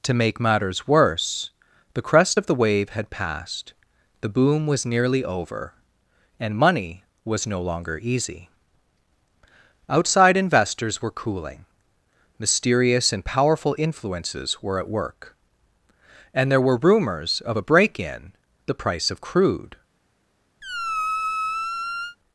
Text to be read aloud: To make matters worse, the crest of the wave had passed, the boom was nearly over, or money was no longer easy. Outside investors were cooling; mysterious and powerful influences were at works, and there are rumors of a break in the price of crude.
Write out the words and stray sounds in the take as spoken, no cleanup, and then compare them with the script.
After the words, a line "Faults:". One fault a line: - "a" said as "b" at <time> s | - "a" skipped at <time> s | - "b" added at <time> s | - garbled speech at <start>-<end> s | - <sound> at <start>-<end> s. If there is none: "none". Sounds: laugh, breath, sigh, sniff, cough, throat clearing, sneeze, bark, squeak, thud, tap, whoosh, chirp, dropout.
To make matters worse, the crest of the wave had passed, the boom was nearly over, and money was no longer easy. Outside investors were cooling; mysterious and powerful influences were at work, and there were rumors of a break in the price of crude.
Faults:
- "or" said as "and" at 6.4 s
- "works" said as "work" at 14.9 s
- "are" said as "were" at 16.6 s
- squeak at 20.6-22.2 s